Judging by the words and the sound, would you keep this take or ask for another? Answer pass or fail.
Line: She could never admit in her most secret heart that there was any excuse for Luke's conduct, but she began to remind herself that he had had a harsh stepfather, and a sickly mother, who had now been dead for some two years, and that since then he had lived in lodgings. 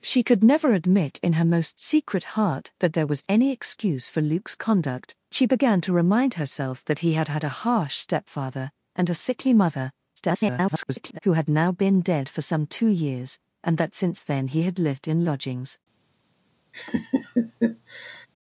fail